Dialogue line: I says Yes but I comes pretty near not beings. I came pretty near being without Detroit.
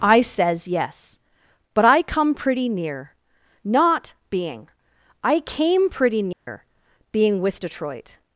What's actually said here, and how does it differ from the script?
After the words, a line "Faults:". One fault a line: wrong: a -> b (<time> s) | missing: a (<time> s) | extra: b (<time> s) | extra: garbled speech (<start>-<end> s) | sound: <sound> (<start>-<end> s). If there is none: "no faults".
I says Yes but I come pretty near not being. I came pretty near being with Detroit.
Faults:
wrong: comes -> come (2.0 s)
wrong: beings -> being (4.3 s)
sound: dropout (6.3-6.5 s)
wrong: without -> with (7.4 s)